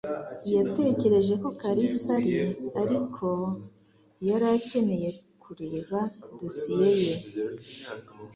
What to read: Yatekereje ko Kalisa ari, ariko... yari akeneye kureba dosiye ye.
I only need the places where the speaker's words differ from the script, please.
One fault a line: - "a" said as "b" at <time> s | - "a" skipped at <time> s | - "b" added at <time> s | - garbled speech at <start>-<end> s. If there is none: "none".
none